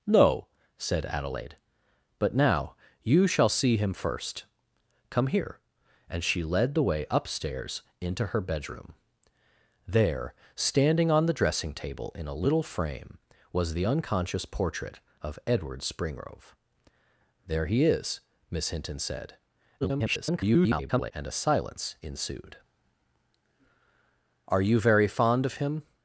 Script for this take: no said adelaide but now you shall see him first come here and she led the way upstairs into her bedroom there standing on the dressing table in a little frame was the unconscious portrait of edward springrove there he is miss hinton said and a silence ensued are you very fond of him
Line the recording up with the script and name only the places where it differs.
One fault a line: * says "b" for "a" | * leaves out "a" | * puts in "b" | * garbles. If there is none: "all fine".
* garbles